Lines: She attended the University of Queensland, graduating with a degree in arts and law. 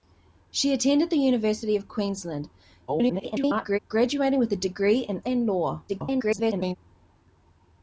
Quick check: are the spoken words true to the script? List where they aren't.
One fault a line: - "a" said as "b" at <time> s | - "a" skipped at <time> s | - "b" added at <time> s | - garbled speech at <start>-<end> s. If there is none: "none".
- garbled speech at 2.9-3.8 s
- "arts" skipped at 5.2 s
- garbled speech at 5.9-6.8 s